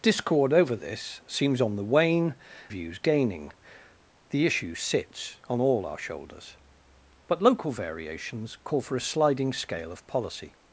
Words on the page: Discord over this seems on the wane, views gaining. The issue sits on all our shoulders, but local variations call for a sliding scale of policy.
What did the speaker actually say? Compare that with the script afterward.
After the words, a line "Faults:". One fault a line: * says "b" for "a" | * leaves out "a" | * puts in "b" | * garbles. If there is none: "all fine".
Discord over this seems on the wane, views gaining. The issue sits on all our shoulders, but local variations call for a sliding scale of policy.
Faults:
all fine